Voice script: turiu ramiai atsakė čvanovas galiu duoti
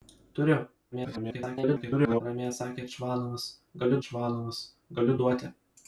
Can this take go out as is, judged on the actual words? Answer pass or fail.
fail